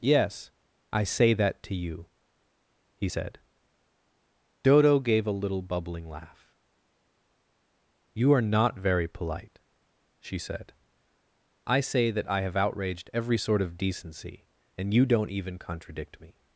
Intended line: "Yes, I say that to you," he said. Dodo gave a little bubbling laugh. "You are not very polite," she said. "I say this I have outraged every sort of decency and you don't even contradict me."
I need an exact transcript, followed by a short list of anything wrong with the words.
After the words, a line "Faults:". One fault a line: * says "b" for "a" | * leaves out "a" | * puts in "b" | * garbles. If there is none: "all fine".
"Yes, I say that to you," he said. Dodo gave a little bubbling laugh. "You are not very polite," she said. "I say that I have outraged every sort of decency and you don't even contradict me."
Faults:
* says "that" for "this"